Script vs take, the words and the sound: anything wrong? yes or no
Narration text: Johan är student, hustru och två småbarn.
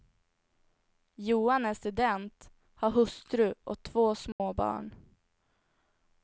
yes